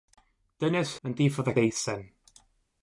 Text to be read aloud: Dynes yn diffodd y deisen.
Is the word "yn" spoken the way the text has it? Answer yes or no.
yes